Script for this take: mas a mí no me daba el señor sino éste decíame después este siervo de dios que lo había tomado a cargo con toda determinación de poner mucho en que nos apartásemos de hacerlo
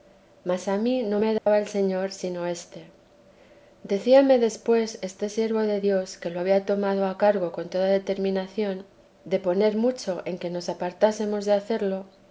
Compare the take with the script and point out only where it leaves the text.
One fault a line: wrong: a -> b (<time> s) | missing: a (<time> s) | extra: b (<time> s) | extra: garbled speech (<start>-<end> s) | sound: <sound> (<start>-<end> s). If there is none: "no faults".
sound: dropout (1.4-1.5 s)